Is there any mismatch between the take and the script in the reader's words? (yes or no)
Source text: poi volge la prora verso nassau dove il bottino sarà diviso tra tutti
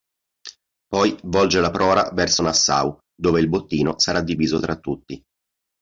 no